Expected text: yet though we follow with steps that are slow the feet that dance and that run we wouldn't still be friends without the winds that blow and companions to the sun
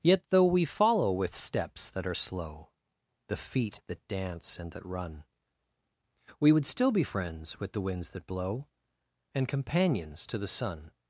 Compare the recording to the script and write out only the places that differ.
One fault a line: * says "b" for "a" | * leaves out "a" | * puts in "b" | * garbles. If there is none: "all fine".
* says "would" for "wouldn't"
* says "with" for "without"